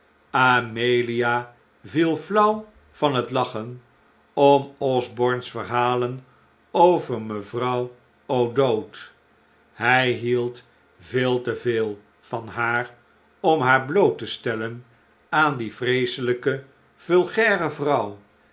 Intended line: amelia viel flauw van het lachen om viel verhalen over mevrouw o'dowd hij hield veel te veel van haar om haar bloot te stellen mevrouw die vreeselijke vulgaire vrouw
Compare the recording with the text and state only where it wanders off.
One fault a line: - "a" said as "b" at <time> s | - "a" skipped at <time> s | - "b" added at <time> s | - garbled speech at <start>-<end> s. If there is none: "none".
- "viel" said as "osborne's" at 4.8 s
- "mevrouw" said as "aan" at 15.3 s